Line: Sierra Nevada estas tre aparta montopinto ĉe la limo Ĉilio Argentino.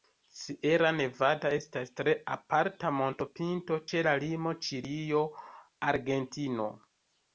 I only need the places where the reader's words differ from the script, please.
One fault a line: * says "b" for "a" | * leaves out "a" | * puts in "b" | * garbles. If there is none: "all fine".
all fine